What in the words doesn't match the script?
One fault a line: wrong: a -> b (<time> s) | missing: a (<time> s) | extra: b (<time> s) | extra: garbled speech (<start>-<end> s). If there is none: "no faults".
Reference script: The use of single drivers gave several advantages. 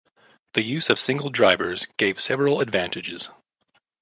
no faults